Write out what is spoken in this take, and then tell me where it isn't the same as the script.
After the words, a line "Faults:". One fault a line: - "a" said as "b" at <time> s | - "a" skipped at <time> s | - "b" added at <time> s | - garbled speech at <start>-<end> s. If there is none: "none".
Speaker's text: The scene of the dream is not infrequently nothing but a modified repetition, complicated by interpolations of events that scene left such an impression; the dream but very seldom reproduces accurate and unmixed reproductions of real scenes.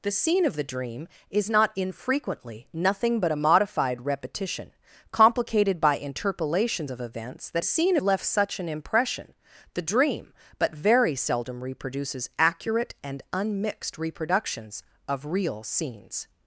The scene of the dream is not infrequently nothing but a modified repetition, complicated by interpolations of events that scene left such an impression; the dream but very seldom reproduces accurate and unmixed reproductions of real scenes.
Faults:
none